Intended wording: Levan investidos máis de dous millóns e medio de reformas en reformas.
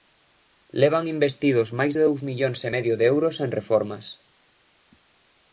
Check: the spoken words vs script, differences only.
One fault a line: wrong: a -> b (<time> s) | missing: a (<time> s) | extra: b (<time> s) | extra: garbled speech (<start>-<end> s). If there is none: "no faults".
wrong: reformas -> euros (3.1 s)